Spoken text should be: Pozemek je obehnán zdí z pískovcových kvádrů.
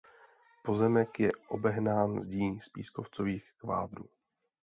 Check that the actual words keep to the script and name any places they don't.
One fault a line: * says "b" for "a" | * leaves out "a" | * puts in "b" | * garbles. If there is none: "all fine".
all fine